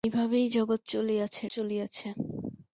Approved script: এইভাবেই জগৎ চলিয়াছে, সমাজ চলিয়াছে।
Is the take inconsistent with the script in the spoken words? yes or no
yes